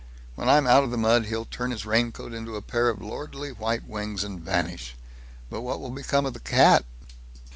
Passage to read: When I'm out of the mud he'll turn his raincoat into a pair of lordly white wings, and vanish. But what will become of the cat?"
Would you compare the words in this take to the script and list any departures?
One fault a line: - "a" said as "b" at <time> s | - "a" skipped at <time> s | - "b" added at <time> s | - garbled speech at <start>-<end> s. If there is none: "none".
none